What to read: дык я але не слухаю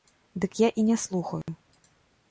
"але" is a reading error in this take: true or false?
true